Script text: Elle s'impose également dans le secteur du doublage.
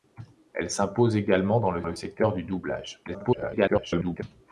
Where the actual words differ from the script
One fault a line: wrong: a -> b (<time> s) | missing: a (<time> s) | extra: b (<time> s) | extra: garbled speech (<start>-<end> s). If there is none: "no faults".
extra: le (1.8 s)
extra: garbled speech (3.1-4.2 s)